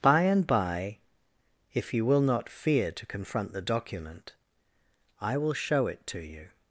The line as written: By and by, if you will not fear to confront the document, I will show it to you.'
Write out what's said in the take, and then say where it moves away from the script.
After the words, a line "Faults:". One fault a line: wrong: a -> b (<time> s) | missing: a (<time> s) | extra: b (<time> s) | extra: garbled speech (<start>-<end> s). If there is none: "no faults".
By and by, if you will not fear to confront the document, I will show it to you.'
Faults:
no faults